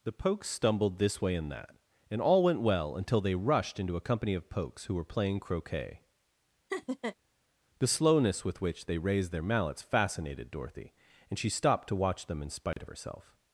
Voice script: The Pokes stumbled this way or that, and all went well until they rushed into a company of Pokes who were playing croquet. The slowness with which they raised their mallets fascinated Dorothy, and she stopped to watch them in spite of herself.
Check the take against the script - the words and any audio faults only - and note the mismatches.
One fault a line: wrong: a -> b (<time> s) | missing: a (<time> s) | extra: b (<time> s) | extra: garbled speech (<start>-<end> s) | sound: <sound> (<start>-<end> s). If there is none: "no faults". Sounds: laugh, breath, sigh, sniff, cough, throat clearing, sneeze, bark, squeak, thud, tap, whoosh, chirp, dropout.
wrong: or -> and (1.4 s)
sound: laugh (6.7-7.2 s)
sound: dropout (12.7-12.8 s)